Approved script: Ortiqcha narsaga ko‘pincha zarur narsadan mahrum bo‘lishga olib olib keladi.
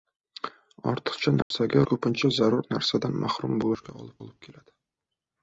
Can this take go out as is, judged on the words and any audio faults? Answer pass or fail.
fail